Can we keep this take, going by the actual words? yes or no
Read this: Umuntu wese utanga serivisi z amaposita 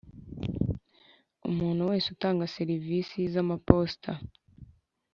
yes